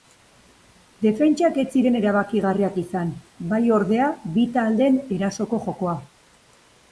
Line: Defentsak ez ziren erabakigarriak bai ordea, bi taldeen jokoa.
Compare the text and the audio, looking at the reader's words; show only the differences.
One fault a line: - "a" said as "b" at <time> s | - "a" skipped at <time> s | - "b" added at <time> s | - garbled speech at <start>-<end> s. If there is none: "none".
- "izan" added at 2.9 s
- "erasoko" added at 5.2 s